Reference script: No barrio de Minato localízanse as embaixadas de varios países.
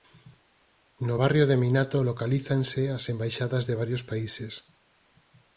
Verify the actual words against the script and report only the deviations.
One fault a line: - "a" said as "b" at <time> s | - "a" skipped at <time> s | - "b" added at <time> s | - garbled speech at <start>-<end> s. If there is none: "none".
none